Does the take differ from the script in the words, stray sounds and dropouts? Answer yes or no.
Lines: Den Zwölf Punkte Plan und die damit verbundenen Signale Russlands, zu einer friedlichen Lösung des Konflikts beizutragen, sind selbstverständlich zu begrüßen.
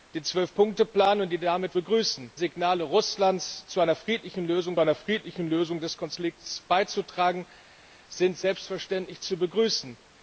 yes